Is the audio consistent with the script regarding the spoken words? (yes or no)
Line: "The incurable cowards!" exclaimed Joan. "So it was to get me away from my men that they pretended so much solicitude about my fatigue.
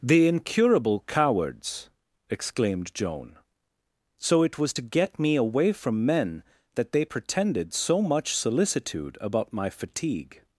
no